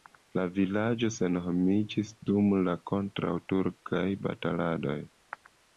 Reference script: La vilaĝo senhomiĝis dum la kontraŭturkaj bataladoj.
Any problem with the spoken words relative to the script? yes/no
no